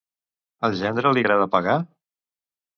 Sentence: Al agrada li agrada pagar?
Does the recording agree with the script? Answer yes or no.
no